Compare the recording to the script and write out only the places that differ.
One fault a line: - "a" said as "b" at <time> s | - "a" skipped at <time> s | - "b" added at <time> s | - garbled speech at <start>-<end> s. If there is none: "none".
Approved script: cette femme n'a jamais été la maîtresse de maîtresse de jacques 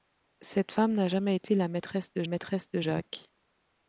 none